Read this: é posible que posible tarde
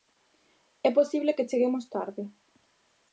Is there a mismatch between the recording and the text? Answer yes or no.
yes